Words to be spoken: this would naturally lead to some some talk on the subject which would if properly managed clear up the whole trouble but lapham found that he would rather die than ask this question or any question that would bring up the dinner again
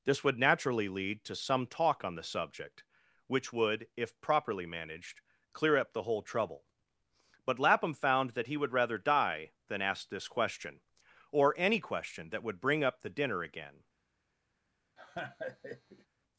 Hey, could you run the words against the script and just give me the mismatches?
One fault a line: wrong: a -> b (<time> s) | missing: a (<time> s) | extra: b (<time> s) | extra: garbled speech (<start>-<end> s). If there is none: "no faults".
missing: some (1.7 s)